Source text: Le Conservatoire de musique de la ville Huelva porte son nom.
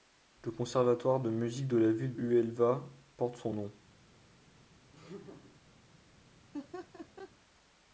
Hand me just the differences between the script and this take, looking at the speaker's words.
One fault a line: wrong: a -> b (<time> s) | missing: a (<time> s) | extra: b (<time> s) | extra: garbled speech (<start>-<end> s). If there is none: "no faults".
no faults